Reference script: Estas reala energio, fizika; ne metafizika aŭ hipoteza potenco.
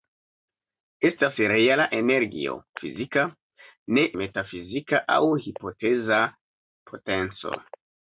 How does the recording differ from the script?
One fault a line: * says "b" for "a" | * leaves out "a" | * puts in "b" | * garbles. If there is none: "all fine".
all fine